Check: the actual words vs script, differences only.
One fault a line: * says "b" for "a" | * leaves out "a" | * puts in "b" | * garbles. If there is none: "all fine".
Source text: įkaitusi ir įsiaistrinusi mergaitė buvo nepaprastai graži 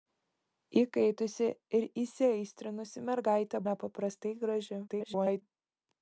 * leaves out "buvo"
* garbles